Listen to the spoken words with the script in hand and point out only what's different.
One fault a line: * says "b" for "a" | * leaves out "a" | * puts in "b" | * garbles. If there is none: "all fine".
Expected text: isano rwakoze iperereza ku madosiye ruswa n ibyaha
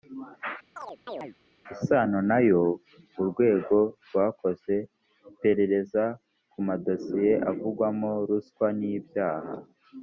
* puts in "nayo urwego"
* puts in "avugwamo"